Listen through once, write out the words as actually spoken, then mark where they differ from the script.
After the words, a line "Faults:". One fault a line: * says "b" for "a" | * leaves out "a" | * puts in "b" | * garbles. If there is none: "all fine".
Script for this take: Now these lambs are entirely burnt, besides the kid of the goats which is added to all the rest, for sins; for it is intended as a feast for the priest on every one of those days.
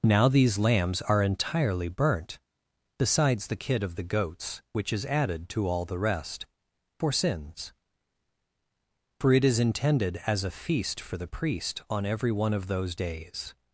Now these lambs are entirely burnt, besides the kid of the goats which is added to all the rest, for sins; for it is intended as a feast for the priest on every one of those days.
Faults:
all fine